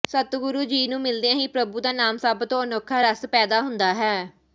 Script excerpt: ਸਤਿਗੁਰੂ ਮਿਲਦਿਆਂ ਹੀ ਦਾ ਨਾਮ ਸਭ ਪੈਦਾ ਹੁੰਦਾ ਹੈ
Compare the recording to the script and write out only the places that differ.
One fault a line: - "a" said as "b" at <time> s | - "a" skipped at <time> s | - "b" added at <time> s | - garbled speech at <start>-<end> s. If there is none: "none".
- "ਜੀ ਨੂੰ" added at 0.6 s
- "ਪ੍ਰਭੂ" added at 1.5 s
- "ਤੋਂ ਅਨੋਖਾ ਰਸ" added at 2.4 s